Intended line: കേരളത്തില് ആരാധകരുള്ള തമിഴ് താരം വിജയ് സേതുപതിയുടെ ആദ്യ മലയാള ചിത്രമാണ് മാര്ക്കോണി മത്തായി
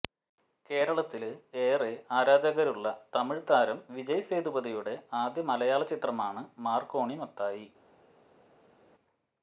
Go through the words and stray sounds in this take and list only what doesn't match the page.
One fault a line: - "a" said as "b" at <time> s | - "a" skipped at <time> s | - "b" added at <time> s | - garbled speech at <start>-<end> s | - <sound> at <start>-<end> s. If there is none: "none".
- "ഏറെ" added at 1.6 s